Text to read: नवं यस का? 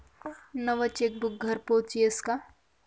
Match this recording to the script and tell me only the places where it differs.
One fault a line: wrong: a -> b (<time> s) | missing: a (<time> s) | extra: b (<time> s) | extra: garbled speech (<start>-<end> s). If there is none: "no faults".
extra: चेकबुक घरपोच (0.9 s)